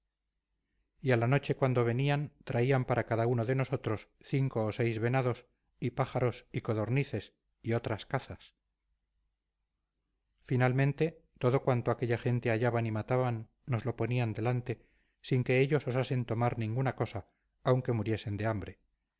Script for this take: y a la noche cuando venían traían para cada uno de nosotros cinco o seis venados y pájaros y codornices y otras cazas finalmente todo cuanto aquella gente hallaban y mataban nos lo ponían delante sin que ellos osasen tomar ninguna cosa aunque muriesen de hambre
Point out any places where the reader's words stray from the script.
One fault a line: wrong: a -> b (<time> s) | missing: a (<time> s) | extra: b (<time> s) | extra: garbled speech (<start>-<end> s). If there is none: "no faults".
no faults